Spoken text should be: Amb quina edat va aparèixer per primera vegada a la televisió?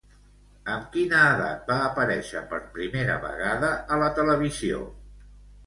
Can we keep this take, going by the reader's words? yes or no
yes